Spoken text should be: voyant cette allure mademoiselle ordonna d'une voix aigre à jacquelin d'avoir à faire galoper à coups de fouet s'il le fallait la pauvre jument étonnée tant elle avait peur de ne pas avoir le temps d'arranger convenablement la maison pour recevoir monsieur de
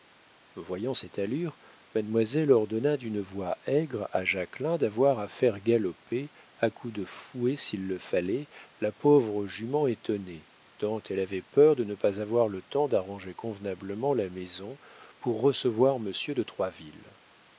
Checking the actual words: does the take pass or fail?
pass